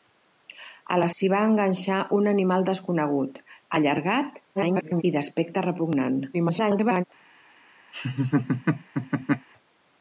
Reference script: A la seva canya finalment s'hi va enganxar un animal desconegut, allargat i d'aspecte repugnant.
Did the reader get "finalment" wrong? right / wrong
wrong